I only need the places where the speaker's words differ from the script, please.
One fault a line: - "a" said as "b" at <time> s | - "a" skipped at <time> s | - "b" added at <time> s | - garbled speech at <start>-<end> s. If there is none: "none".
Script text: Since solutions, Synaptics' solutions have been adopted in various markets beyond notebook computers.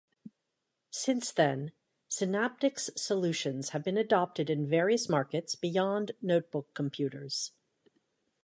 - "solutions" said as "then" at 1.3 s